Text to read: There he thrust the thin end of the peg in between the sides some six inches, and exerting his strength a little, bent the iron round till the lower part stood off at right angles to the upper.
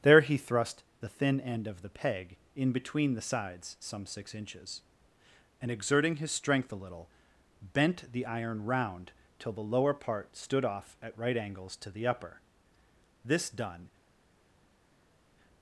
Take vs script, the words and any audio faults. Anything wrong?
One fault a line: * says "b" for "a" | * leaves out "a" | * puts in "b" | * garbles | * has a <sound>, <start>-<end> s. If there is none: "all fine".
* puts in "This done"